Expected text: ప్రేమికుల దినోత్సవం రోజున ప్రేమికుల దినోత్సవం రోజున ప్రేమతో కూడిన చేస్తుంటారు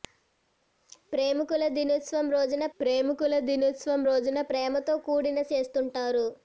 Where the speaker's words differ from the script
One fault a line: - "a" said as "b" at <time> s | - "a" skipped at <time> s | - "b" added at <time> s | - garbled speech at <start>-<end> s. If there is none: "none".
none